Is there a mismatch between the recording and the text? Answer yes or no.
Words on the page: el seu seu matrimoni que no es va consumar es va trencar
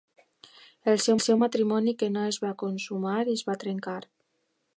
no